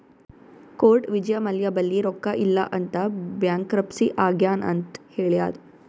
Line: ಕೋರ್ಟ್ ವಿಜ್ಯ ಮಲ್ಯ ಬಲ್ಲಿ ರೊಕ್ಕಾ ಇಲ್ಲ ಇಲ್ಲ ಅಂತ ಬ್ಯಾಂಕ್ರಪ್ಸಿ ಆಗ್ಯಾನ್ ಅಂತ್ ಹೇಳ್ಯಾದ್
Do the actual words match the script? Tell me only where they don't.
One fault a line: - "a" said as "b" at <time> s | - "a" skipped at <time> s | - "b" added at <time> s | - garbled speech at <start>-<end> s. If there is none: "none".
- "ಇಲ್ಲ" skipped at 2.6 s